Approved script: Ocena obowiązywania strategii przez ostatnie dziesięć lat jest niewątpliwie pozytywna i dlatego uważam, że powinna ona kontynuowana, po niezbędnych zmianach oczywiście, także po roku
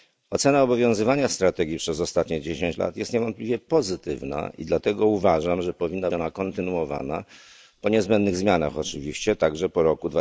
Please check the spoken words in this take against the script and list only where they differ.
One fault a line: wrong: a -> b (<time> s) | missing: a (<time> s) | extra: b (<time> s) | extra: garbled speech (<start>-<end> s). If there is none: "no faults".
no faults